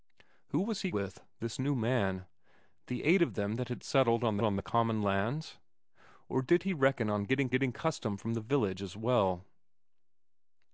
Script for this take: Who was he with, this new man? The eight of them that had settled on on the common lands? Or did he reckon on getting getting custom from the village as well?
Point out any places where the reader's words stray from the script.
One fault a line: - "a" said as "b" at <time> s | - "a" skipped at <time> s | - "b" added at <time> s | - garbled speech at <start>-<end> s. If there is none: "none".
none